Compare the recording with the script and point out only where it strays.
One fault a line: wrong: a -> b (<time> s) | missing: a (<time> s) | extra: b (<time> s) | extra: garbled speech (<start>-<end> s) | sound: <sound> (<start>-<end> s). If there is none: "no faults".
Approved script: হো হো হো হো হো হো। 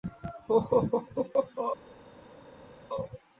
missing: হো (1.7 s)